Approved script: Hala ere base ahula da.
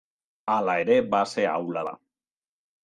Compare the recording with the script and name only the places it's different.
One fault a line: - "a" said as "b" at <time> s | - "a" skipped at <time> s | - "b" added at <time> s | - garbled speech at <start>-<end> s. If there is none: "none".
none